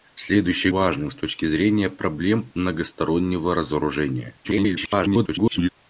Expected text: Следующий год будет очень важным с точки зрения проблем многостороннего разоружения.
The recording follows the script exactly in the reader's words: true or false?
false